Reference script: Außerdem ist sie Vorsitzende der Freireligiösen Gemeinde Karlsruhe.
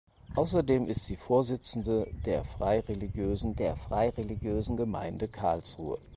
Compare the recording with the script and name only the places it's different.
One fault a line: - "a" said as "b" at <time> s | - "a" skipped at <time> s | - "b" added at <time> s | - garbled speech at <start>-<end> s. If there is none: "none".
- "der Freireligiösen" added at 3.6 s